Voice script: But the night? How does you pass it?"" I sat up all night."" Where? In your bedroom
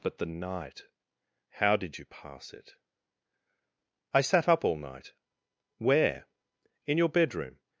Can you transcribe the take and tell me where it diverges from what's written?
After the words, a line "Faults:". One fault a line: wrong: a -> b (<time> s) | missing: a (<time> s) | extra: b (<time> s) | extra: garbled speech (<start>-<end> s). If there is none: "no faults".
But the night? How did you pass it?"" I sat up all night."" Where? In your bedroom
Faults:
wrong: does -> did (1.8 s)